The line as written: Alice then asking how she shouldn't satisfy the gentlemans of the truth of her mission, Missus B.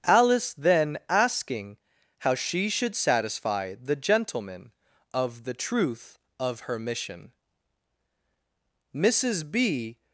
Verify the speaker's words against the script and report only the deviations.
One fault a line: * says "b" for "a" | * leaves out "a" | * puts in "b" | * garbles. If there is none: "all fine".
* says "should" for "shouldn't"
* says "gentleman" for "gentlemans"